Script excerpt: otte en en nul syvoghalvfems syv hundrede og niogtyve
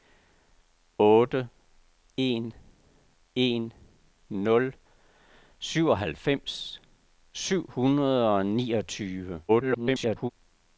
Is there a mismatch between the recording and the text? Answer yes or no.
yes